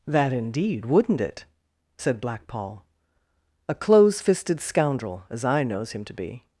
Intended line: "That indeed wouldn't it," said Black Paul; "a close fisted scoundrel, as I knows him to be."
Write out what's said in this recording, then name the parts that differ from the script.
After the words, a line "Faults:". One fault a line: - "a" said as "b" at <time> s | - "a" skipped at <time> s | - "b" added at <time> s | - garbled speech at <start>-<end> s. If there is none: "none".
"That indeed wouldn't it," said Black Paul; "a close fisted scoundrel, as I knows him to be."
Faults:
none